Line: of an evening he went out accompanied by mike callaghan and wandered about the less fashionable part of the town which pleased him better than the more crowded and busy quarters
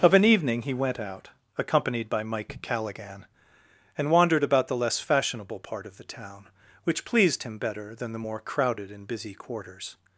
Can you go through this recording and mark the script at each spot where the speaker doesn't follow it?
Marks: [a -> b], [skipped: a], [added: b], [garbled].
of an evening he went out accompanied by mike callaghan and wandered about the less fashionable part of the town which pleased him better than the more crowded and busy quarters